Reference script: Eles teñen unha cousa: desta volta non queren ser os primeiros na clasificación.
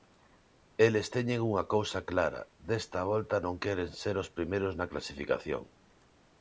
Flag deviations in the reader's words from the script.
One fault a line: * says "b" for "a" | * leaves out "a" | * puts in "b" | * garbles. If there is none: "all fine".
* puts in "clara"